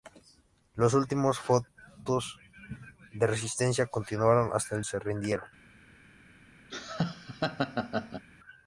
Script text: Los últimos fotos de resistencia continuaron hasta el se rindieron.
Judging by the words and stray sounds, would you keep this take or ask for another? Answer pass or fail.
fail